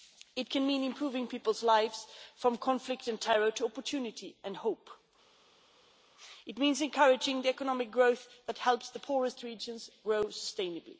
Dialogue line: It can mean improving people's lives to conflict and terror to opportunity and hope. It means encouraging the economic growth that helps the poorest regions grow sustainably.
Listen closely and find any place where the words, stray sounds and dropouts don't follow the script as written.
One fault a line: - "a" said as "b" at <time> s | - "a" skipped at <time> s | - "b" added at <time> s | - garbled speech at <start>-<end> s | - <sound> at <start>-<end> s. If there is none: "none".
- "to" said as "from" at 2.4 s